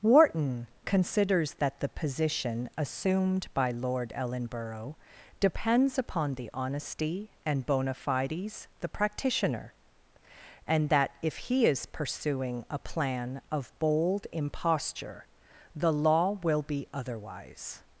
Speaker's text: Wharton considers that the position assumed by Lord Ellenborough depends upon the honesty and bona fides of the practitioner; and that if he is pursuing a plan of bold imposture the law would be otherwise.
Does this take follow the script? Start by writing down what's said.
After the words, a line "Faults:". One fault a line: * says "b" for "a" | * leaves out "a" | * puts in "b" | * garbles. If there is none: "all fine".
Wharton considers that the position assumed by Lord Ellenborough depends upon the honesty and bona fides the practitioner; and that if he is pursuing a plan of bold imposture the law will be otherwise.
Faults:
* leaves out "of"
* says "will" for "would"